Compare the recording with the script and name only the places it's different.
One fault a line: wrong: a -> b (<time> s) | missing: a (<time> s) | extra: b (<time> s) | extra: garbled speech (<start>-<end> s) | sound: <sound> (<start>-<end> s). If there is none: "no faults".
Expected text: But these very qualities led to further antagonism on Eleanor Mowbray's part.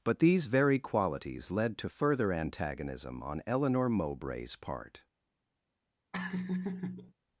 sound: laugh (6.1-7.1 s)